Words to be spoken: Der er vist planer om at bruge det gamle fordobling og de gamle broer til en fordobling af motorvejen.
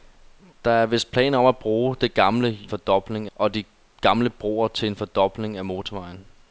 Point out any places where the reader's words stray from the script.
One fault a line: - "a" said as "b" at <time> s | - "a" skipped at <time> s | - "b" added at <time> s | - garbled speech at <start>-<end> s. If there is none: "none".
none